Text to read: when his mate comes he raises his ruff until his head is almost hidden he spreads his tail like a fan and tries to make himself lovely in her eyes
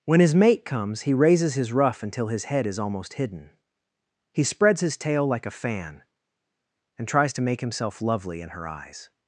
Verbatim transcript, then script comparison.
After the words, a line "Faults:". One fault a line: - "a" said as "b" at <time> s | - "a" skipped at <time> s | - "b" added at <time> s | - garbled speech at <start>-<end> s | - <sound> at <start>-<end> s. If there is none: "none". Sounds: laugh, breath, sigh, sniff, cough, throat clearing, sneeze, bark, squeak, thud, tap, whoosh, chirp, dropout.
when his mate comes he raises his ruff until his head is almost hidden he spreads his tail like a fan and tries to make himself lovely in her eyes
Faults:
none